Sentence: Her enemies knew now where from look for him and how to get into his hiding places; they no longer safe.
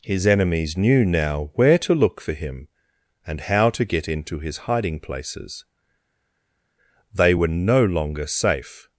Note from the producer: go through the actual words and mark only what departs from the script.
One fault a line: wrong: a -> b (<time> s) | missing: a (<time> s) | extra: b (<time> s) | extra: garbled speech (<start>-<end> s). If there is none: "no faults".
wrong: Her -> His (0.0 s)
wrong: from -> to (1.8 s)
extra: were (7.3 s)